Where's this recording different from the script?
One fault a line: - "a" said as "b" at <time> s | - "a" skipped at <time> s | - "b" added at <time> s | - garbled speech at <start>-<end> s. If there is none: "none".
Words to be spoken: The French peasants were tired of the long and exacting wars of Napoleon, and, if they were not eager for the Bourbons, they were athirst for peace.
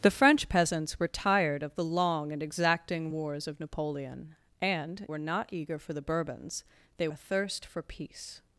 - "if they" skipped at 5.1 s
- "were" skipped at 7.1 s